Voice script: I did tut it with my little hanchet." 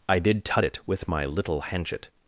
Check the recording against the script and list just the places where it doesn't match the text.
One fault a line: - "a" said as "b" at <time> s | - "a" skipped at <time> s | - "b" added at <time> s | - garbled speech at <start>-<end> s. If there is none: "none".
none